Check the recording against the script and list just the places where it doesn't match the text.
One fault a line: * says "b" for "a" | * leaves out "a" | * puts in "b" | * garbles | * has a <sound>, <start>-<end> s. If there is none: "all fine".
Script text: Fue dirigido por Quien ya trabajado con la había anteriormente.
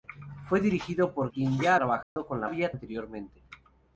* has a dropout, 2.0-2.2 s